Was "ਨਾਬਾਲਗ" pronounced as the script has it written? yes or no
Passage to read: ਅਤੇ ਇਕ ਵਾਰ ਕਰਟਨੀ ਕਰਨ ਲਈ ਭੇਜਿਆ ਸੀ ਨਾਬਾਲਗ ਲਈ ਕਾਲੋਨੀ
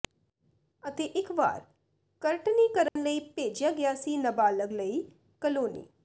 yes